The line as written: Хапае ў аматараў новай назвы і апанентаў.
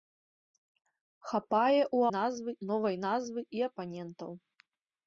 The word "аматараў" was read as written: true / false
false